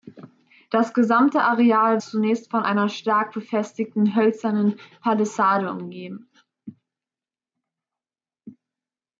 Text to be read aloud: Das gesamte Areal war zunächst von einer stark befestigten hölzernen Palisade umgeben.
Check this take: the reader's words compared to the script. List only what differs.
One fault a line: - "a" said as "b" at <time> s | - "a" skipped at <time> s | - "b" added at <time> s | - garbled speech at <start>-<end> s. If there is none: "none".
- "war" skipped at 2.0 s